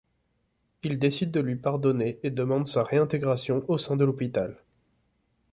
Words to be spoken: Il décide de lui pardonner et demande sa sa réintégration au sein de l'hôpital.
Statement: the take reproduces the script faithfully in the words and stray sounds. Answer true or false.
false